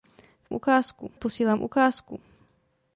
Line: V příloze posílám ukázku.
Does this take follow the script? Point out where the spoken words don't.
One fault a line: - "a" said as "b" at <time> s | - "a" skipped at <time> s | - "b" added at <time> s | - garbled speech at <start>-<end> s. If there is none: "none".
- "příloze" said as "ukázku" at 0.5 s